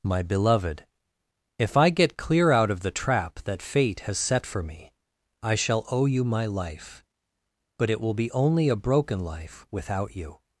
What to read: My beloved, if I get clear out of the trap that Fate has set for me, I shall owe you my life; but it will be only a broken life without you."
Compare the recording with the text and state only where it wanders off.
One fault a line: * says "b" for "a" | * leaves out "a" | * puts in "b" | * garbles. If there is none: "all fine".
all fine